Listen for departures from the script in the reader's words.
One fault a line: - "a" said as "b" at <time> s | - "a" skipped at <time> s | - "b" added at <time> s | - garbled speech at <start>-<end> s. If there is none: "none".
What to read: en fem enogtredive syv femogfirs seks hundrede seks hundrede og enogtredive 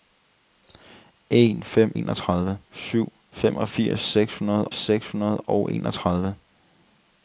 none